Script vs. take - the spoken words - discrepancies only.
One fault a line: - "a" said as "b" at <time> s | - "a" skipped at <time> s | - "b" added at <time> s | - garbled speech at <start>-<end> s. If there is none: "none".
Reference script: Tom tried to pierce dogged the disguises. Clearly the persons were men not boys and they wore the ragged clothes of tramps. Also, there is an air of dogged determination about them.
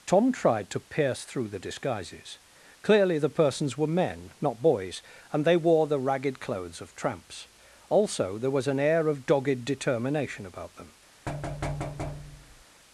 - "dogged" said as "through" at 1.2 s
- "is" said as "was" at 8.5 s